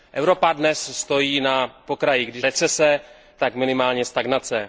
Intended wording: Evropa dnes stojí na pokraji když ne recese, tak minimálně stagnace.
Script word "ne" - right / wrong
wrong